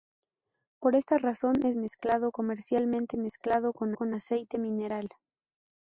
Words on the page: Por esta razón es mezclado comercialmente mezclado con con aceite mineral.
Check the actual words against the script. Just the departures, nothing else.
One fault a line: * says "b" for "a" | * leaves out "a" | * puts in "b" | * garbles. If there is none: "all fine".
all fine